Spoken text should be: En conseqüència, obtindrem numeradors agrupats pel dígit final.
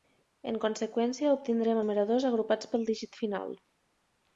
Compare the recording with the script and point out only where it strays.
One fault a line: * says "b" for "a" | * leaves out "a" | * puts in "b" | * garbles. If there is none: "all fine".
all fine